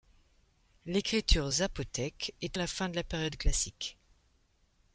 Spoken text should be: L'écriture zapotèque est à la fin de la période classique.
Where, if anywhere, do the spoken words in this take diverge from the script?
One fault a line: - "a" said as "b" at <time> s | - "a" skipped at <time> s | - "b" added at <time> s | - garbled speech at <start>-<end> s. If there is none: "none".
none